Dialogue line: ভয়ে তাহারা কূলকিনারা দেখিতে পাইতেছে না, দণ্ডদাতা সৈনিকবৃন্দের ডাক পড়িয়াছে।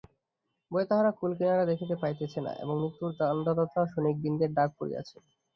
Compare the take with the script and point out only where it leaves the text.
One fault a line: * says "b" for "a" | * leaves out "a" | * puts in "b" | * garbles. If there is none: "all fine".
* puts in "এবং মৃত্যুর"